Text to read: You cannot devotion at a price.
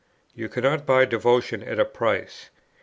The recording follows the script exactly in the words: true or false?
false